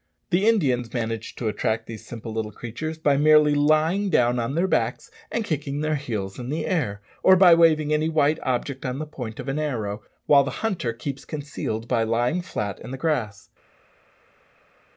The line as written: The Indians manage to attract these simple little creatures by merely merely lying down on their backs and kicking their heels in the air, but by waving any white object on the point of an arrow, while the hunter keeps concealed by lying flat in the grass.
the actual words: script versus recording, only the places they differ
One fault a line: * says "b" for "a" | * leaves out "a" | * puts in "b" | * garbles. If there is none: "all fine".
* leaves out "merely"
* says "or" for "but"